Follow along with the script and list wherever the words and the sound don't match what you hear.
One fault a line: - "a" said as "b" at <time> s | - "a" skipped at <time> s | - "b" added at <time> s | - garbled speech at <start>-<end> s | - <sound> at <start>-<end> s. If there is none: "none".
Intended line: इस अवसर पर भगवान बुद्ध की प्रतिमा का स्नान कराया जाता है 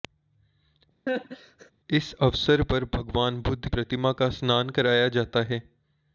- laugh at 1.1-1.7 s
- "की" skipped at 3.7 s